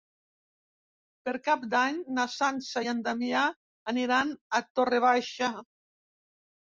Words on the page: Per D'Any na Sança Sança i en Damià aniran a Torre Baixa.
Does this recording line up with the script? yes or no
no